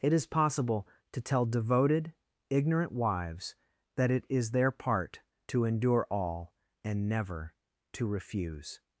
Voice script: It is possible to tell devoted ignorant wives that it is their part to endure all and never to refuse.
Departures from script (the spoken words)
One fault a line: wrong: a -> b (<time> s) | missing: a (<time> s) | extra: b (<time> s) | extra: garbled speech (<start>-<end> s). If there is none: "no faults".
no faults